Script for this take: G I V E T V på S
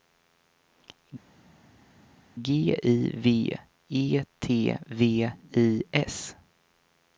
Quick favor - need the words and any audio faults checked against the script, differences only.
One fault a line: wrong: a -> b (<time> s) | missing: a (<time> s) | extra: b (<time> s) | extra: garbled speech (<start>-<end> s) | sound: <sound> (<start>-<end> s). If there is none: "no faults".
wrong: på -> I (5.5 s)